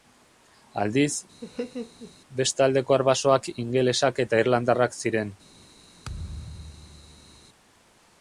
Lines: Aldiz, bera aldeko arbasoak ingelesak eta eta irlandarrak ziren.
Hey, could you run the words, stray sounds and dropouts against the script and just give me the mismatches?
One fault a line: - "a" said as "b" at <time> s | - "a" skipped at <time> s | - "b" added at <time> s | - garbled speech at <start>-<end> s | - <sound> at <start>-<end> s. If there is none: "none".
- laugh at 1.4-2.1 s
- "bera" said as "beste" at 2.4 s
- "eta" skipped at 4.4 s
- thud at 6.0-7.5 s